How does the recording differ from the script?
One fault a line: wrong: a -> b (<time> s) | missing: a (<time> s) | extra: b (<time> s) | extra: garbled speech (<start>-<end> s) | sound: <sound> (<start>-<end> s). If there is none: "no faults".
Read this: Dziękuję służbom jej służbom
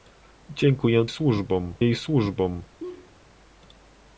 sound: laugh (2.8-3.2 s)